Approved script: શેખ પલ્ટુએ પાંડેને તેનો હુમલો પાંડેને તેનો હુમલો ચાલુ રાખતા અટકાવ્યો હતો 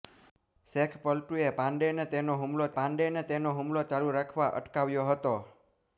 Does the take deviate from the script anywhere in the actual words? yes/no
no